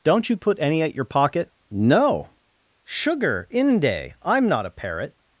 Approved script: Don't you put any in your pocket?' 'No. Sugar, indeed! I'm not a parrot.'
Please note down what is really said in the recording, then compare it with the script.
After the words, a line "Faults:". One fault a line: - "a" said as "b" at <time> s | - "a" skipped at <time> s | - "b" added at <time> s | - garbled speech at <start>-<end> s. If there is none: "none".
Don't you put any at your pocket?' 'No. Sugar, inde! I'm not a parrot.'
Faults:
- "in" said as "at" at 0.8 s
- "indeed" said as "inde" at 3.5 s